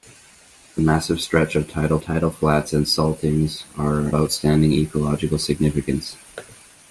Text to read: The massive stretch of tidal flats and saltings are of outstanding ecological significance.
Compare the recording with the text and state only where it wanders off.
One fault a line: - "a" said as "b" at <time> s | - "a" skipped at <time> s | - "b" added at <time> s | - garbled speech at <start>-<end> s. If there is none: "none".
- "tidal" added at 2.0 s
- "of" skipped at 4.1 s